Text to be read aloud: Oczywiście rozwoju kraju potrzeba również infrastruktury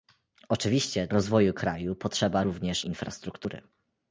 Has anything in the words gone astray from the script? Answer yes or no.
no